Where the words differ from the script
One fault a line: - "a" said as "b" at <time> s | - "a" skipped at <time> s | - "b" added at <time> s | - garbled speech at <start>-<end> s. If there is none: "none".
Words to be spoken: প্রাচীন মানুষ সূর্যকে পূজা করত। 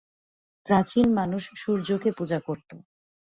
none